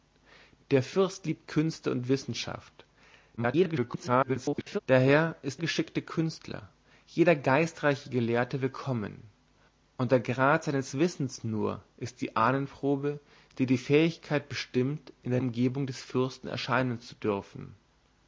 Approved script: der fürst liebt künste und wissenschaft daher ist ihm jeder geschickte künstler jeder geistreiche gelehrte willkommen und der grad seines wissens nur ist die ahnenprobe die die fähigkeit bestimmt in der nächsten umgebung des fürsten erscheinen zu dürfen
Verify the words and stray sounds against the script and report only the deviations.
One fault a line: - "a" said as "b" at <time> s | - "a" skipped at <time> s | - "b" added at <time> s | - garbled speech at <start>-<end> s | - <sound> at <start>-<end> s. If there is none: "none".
- garbled speech at 3.4-4.8 s
- "ihm jeder" skipped at 5.6 s
- "nächsten" skipped at 15.4 s